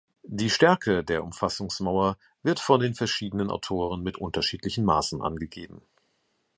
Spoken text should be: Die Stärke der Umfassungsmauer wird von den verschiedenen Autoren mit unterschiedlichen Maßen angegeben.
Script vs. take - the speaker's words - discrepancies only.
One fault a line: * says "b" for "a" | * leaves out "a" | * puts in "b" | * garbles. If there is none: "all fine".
all fine